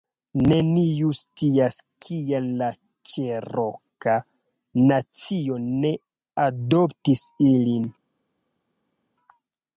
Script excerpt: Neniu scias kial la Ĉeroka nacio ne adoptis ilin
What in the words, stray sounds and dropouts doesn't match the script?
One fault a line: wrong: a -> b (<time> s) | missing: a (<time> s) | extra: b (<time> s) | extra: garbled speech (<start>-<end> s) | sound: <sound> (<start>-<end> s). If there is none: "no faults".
no faults